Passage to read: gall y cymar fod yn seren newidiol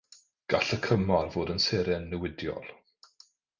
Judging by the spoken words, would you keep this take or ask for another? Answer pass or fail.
pass